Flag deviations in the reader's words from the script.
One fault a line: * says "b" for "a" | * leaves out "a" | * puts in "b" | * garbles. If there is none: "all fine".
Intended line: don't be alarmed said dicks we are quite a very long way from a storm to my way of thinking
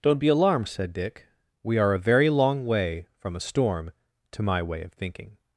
* says "dick" for "dicks"
* leaves out "quite"